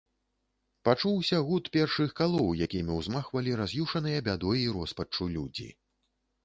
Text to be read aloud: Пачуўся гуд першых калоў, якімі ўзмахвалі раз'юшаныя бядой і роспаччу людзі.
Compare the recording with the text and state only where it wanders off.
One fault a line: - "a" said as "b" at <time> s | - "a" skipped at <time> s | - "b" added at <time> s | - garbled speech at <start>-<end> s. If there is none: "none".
none